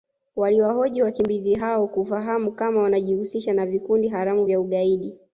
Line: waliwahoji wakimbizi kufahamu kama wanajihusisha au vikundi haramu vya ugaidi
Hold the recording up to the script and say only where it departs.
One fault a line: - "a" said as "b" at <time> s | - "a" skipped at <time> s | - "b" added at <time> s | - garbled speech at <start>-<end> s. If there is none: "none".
- "hao" added at 1.6 s
- "au" said as "na" at 3.5 s